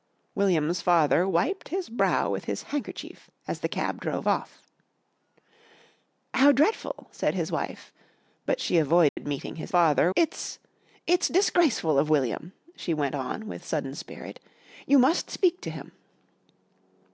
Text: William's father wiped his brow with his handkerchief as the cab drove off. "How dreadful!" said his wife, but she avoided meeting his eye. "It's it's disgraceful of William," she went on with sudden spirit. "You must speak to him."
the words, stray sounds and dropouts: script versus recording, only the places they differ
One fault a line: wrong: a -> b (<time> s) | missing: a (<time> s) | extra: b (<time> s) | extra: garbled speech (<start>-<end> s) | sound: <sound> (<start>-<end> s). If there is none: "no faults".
sound: dropout (9.1-9.2 s)
wrong: eye -> father (9.7 s)